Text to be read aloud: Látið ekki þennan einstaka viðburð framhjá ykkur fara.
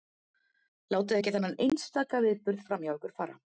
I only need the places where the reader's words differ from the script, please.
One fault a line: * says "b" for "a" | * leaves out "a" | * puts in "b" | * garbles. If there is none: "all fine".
all fine